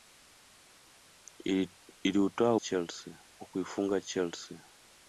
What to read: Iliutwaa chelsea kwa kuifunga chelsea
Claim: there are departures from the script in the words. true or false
false